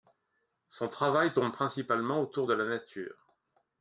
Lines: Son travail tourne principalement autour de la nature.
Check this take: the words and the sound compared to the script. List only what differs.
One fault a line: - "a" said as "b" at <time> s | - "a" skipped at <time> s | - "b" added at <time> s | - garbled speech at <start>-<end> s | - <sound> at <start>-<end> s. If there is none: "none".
none